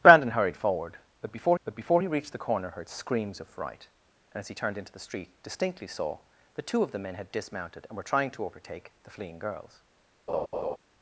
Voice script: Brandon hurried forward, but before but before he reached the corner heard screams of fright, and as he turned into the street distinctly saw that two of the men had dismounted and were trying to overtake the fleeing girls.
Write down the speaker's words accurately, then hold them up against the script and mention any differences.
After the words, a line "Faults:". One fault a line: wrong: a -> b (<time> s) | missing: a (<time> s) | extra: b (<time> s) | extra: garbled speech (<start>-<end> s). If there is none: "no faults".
Brandon hurried forward, but before but before he reached the corner heard screams of fright, and as he turned into the street distinctly saw that two of the men had dismounted and were trying to overtake the fleeing girls.
Faults:
no faults